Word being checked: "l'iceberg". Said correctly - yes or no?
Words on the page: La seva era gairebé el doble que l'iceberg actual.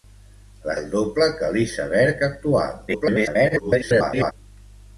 yes